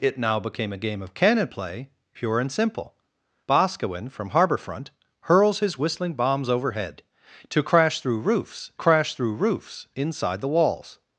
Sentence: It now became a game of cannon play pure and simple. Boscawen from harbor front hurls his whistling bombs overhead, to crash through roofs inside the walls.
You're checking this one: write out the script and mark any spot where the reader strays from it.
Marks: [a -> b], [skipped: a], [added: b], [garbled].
It now became a game of cannon play pure and simple. Boscawen from harbor front hurls his whistling bombs overhead, to crash through roofs [added: crash through roofs] inside the walls.